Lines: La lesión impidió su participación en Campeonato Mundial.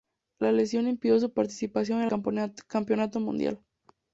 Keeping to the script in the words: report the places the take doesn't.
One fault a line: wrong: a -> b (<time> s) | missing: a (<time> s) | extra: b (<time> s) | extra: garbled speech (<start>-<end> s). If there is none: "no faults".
no faults